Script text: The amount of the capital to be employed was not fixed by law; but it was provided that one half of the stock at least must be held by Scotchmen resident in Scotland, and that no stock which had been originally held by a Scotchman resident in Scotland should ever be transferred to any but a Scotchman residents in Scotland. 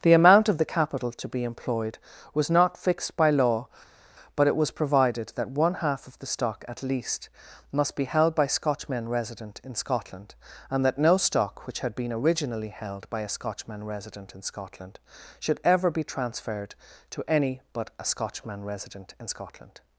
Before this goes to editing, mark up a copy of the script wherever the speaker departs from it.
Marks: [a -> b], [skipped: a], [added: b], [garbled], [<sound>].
The amount of the capital to be employed was not fixed by law; but it was provided that one half of the stock at least must be held by Scotchmen resident in Scotland, and that no stock which had been originally held by a Scotchman resident in Scotland should ever be transferred to any but a Scotchman [residents -> resident] in Scotland.